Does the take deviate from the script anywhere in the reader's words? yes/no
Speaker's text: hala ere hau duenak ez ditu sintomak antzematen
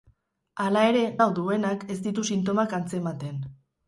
no